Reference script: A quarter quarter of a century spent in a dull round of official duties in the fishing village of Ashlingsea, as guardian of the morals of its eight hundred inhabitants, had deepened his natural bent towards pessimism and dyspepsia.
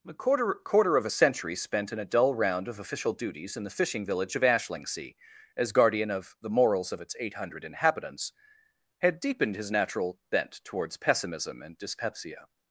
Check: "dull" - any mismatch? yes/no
no